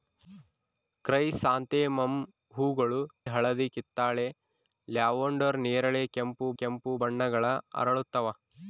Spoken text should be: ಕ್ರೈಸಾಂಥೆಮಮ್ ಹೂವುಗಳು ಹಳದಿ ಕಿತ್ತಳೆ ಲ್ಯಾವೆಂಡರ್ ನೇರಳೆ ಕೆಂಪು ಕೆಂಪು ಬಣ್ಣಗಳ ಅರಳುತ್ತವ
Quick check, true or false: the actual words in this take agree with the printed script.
true